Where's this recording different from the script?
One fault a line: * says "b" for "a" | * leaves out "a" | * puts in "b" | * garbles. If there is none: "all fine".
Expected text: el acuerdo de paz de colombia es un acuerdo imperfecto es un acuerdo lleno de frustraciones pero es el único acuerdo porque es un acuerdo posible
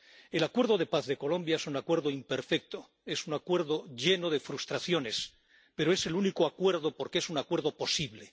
all fine